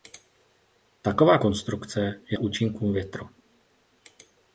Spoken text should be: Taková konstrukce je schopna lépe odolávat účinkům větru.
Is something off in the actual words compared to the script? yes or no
yes